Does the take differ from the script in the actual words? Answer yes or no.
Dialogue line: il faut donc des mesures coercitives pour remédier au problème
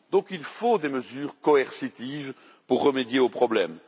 no